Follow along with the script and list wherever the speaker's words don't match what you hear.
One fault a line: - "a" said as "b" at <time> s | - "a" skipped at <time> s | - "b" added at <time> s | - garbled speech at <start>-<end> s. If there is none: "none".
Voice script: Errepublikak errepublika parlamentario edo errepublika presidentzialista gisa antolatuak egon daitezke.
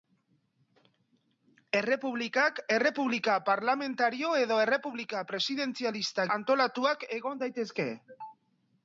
- "gisa" skipped at 6.3 s